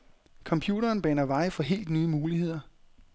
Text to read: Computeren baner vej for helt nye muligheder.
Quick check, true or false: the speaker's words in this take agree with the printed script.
true